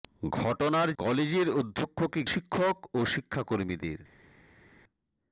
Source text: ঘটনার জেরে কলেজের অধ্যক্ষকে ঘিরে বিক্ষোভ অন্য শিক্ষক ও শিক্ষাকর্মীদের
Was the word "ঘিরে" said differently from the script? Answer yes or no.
yes